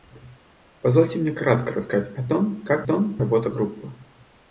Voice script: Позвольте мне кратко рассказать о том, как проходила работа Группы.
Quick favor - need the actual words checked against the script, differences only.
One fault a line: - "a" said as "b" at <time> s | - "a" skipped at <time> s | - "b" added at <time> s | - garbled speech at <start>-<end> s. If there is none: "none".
- "проходила" said as "том" at 2.8 s